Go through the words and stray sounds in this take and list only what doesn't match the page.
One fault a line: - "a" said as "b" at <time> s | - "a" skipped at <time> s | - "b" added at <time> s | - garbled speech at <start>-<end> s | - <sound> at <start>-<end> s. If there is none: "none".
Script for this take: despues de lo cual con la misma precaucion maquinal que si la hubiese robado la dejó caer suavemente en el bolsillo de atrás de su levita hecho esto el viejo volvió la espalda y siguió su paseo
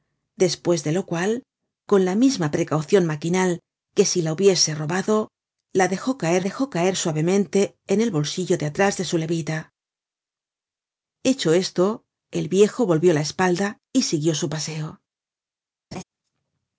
- "dejó caer" added at 6.4 s
- laugh at 15.9-16.0 s